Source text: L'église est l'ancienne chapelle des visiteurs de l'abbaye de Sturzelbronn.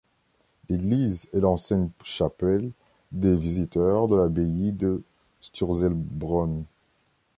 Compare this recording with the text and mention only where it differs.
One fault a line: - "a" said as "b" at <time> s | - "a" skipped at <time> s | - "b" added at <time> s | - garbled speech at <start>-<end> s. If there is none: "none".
none